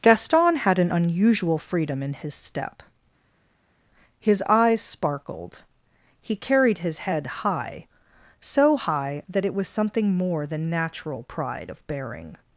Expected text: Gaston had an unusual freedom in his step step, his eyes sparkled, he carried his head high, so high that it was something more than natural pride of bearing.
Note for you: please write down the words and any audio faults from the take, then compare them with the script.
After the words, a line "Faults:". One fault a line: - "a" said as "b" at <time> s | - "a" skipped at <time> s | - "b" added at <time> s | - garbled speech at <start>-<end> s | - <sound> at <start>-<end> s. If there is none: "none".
Gaston had an unusual freedom in his step, his eyes sparkled, he carried his head high, so high that it was something more than natural pride of bearing.
Faults:
- "step" skipped at 2.8 s